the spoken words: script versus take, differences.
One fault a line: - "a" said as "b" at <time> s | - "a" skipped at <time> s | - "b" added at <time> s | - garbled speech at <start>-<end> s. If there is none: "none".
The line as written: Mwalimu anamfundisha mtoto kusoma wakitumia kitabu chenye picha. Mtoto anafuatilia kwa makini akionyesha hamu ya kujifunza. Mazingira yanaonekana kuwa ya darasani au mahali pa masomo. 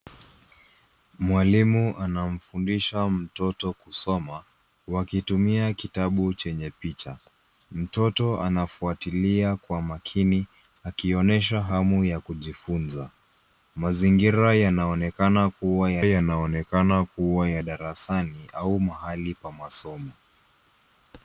- "yanaonekana kuwa ya" added at 16.0 s